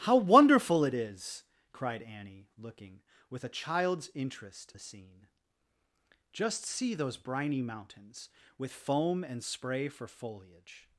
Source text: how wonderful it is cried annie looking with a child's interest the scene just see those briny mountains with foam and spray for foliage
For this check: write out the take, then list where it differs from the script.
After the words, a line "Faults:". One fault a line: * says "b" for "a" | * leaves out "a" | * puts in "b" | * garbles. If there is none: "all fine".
how wonderful it is cried annie looking with a child's interest the scene just see those briny mountains with foam and spray for foliage
Faults:
all fine